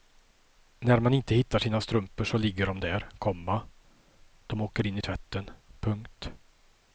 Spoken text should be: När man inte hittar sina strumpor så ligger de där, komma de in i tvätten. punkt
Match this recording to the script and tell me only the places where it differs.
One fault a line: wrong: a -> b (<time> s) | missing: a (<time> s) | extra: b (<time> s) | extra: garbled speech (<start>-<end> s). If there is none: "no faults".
extra: åker (4.6 s)